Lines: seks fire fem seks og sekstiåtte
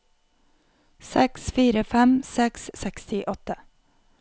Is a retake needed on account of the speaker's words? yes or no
no